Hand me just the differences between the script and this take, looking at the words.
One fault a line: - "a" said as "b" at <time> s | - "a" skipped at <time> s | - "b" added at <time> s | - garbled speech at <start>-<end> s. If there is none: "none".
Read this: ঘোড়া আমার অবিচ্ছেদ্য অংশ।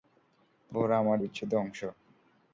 none